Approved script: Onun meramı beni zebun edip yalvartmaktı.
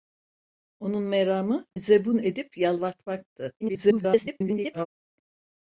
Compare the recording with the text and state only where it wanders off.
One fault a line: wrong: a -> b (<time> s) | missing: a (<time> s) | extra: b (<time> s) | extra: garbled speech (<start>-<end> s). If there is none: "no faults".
missing: beni (1.6 s)
extra: garbled speech (3.6-4.9 s)